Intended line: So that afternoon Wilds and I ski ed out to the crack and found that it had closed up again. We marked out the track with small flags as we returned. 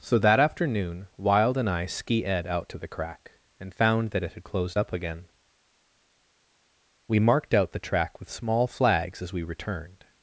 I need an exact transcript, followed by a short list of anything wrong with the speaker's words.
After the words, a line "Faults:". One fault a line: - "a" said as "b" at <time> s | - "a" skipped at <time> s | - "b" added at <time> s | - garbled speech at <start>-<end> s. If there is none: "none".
So that afternoon Wild and I ski ed out to the crack and found that it had closed up again. We marked out the track with small flags as we returned.
Faults:
- "Wilds" said as "Wild" at 1.1 s